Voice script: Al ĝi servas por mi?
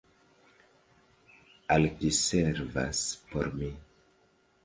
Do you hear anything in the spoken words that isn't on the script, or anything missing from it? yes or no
no